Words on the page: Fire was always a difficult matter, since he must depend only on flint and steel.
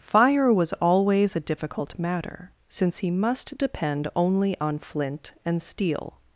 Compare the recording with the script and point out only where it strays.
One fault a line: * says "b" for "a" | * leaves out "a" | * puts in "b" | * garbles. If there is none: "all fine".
all fine